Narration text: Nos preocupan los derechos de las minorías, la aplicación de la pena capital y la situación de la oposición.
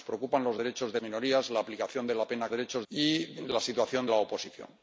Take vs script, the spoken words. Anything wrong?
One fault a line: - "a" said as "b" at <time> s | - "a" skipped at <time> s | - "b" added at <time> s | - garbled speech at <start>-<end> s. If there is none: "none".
- "las" skipped at 1.0 s
- "capital" said as "derechos" at 2.5 s
- "de" skipped at 4.1 s